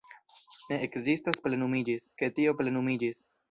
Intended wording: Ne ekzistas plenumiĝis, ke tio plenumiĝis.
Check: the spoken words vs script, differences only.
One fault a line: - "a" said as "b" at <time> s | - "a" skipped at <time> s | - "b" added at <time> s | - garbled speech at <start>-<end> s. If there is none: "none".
none